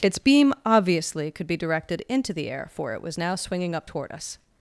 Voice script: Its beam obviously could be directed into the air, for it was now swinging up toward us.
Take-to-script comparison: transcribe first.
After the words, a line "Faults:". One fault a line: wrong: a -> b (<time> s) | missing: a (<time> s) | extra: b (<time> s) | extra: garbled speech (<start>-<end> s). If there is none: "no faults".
Its beam obviously could be directed into the air, for it was now swinging up toward us.
Faults:
no faults